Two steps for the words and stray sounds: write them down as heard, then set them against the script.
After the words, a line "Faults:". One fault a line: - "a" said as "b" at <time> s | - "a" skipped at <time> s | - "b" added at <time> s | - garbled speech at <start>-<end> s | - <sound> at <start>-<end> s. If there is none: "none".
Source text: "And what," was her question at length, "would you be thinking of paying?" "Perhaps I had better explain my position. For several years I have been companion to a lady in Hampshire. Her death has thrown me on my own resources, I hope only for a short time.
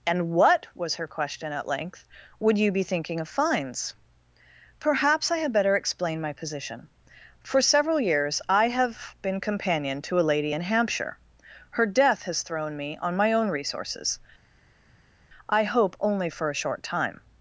"And what," was her question at length, "would you be thinking of fines?" "Perhaps I had better explain my position. For several years I have been companion to a lady in Hampshire. Her death has thrown me on my own resources, I hope only for a short time.
Faults:
- "paying" said as "fines" at 3.3 s